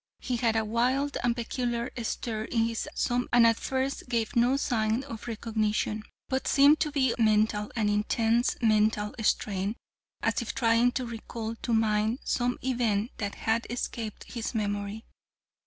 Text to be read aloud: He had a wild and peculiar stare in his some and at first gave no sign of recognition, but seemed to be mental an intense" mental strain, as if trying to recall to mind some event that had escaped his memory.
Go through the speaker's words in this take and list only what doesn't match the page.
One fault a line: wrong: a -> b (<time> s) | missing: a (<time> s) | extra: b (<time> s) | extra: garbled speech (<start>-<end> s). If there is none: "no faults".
no faults